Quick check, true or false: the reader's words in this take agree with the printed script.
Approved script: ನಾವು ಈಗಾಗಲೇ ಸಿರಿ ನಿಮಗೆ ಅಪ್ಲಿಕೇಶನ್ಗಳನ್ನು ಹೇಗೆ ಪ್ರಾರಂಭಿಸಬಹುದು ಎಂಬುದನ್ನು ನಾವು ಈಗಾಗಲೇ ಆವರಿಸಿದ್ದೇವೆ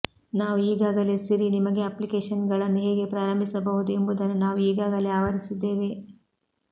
true